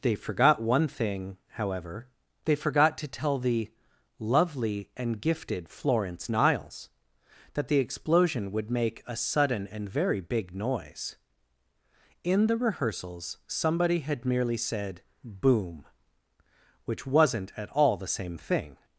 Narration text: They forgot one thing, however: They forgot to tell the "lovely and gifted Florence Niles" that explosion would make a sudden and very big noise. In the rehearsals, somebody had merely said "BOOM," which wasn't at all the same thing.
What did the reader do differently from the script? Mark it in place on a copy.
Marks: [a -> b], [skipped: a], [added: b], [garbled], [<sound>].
They forgot one thing, however: They forgot to tell the "lovely and gifted Florence Niles" that [added: the] explosion would make a sudden and very big noise. In the rehearsals, somebody had merely said "BOOM," which wasn't at all the same thing.